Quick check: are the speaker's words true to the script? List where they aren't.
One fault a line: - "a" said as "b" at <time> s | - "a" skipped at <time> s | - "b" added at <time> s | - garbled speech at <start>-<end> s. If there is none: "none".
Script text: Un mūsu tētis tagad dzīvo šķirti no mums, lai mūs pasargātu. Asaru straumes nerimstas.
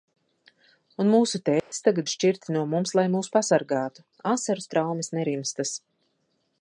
- "dzīvo" skipped at 2.1 s